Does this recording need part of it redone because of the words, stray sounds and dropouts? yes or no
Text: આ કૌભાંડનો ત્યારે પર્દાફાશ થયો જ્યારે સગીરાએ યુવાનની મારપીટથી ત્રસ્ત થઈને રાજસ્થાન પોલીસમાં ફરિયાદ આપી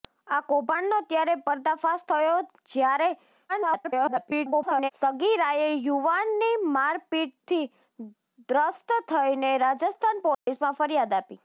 yes